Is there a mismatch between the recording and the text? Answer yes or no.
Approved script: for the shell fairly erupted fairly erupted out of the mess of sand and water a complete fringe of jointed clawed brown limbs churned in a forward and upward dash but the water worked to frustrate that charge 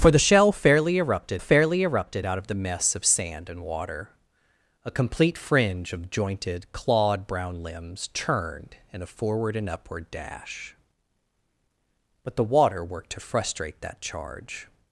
no